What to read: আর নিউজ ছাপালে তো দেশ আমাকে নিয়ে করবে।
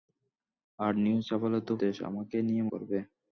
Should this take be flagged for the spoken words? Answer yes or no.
no